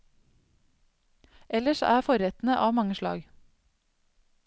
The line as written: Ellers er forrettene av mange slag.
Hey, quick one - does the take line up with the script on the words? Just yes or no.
yes